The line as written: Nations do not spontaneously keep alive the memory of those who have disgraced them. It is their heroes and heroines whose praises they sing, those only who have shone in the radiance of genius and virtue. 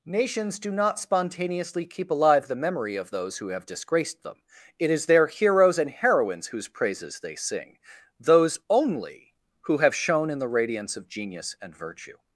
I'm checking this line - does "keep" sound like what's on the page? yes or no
yes